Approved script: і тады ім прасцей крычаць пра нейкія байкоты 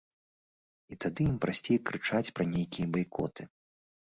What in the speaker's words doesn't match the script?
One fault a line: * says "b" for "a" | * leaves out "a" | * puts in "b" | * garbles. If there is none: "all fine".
all fine